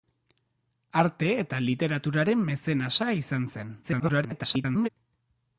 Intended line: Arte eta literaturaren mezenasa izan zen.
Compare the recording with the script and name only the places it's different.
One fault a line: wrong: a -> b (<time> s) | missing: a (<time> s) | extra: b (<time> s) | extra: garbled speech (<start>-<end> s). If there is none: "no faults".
extra: garbled speech (3.8-4.9 s)